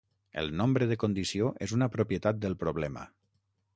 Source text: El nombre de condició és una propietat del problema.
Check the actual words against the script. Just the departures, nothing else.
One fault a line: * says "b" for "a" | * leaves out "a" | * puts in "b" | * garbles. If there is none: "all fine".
all fine